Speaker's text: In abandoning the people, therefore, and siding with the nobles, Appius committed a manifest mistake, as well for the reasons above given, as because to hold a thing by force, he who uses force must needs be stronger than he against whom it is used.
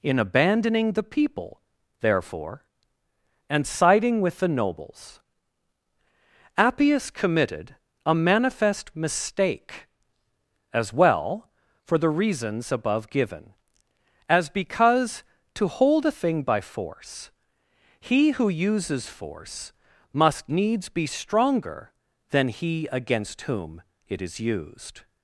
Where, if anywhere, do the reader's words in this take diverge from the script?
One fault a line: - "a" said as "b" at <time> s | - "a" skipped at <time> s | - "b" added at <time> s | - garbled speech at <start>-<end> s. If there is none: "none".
none